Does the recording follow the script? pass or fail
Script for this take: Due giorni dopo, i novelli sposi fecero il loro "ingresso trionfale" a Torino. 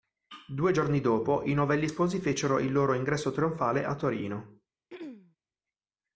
pass